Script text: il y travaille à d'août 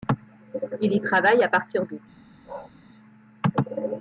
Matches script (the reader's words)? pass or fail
fail